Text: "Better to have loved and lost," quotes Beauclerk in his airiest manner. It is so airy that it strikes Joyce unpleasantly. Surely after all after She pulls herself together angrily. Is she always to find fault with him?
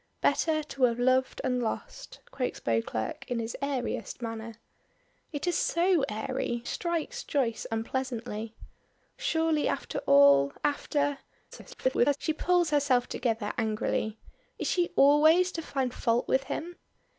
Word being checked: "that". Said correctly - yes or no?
no